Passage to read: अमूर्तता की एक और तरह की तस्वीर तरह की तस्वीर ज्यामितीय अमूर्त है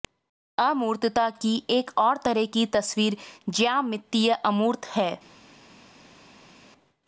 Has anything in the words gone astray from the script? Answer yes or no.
yes